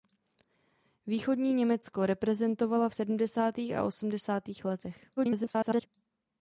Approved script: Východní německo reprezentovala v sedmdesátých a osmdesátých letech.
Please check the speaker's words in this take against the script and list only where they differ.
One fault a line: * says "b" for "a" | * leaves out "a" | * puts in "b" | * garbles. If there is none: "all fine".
* garbles